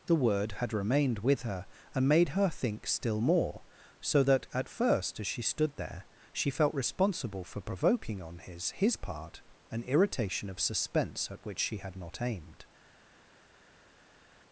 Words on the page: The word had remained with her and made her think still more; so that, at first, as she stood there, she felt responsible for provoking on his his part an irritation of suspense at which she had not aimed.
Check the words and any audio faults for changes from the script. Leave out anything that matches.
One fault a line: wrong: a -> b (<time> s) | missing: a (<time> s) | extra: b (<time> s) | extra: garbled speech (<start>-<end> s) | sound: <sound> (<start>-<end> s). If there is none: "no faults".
no faults